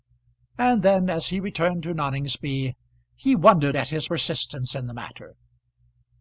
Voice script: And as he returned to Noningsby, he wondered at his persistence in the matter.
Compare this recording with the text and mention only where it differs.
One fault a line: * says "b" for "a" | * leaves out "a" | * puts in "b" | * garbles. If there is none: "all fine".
* puts in "then"